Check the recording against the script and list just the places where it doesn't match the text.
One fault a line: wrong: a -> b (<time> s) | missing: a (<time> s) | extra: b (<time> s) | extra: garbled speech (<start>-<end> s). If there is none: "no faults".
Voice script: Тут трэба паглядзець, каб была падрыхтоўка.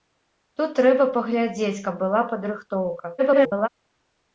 extra: garbled speech (3.2-3.7 s)